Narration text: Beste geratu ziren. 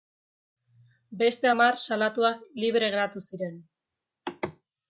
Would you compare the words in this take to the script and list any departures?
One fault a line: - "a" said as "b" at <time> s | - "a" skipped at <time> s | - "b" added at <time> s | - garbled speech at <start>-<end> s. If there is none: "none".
- "hamar salatuak libre" added at 1.5 s